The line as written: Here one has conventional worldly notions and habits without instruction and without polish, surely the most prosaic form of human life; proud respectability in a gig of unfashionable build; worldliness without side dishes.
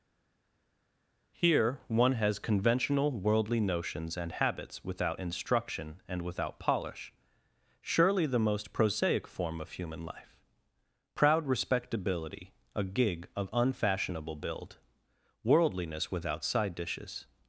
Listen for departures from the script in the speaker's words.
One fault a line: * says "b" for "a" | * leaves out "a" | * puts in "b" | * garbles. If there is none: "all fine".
* leaves out "in"